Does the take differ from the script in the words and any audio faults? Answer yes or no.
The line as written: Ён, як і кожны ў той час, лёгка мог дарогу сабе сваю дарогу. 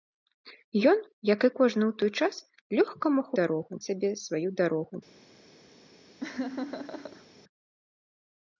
yes